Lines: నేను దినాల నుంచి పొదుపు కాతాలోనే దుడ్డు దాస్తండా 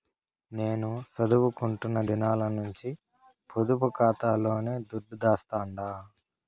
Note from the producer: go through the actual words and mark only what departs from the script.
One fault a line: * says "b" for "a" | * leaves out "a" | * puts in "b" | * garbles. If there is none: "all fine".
* puts in "సదువుకుంటున్న"